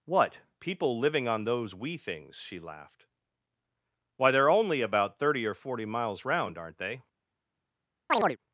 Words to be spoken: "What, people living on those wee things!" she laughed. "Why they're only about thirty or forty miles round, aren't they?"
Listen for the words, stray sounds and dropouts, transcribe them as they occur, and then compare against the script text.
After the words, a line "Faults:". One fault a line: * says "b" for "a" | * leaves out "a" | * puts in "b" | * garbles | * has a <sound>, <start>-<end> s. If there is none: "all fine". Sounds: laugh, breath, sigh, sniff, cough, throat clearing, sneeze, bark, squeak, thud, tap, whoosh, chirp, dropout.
"What, people living on those wee things!" she laughed. "Why they're only about thirty or forty miles round, aren't they?"
Faults:
* has a chirp, 8.1-8.4 s